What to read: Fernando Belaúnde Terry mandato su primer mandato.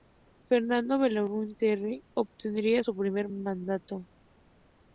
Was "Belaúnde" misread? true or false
false